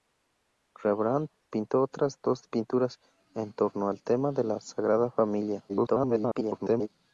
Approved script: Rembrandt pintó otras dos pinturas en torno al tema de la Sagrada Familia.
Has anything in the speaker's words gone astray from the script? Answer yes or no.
yes